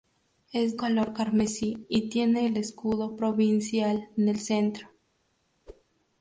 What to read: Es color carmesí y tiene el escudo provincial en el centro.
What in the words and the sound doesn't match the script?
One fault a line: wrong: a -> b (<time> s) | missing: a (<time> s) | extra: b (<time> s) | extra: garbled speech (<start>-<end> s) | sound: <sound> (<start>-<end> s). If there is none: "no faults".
sound: whoosh (5.7-5.8 s)